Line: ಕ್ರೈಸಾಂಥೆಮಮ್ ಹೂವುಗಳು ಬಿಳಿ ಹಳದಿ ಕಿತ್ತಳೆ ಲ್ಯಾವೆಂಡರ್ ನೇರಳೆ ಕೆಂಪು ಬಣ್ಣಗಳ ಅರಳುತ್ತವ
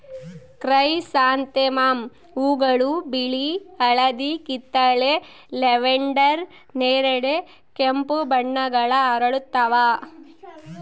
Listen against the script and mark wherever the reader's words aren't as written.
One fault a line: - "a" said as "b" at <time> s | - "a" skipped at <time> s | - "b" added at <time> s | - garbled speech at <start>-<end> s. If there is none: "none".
none